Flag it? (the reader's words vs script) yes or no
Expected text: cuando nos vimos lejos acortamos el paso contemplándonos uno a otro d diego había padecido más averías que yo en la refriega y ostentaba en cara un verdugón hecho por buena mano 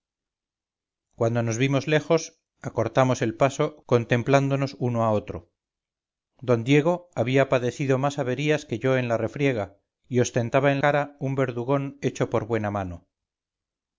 no